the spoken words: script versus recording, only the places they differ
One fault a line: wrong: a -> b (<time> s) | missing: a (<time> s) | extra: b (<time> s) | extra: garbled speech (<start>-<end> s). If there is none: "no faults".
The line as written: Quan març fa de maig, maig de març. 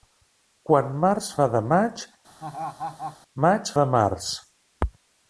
no faults